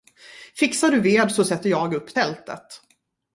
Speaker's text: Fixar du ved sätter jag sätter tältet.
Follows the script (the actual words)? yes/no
no